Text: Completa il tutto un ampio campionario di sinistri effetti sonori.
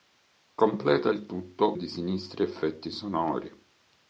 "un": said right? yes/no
no